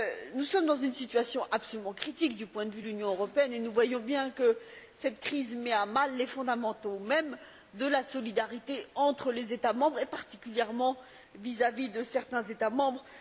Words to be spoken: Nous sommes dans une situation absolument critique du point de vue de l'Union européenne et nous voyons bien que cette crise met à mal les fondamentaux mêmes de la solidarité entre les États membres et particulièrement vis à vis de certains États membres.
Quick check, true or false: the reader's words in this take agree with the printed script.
true